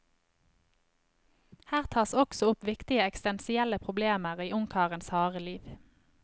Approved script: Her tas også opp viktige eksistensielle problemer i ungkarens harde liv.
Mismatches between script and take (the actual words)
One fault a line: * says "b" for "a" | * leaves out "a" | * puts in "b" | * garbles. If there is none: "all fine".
all fine